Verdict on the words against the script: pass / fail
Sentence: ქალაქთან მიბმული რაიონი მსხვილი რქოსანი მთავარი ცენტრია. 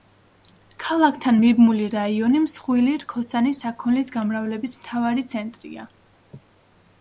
fail